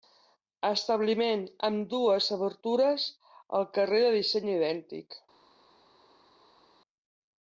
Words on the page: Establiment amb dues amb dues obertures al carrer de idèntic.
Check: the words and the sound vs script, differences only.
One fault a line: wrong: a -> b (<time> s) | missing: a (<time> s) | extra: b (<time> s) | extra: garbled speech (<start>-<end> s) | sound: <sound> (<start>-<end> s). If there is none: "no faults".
missing: amb dues (2.3 s)
extra: disseny (4.2 s)